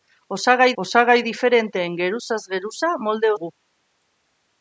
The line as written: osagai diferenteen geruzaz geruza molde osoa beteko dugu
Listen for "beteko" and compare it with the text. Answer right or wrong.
wrong